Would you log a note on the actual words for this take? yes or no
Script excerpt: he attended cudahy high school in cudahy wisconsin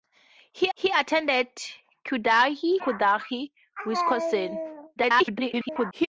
yes